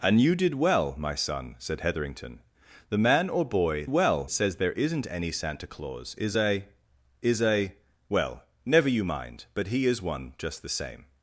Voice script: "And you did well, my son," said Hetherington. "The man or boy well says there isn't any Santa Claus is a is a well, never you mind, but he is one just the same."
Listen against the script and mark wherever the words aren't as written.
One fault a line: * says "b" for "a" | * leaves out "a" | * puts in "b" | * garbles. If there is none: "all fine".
all fine